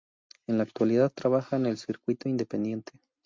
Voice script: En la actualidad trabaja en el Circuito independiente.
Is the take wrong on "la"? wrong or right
right